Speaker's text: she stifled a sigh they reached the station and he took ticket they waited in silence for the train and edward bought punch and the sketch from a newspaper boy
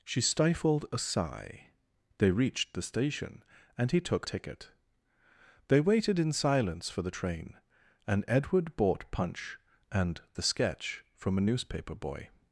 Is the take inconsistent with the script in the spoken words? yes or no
no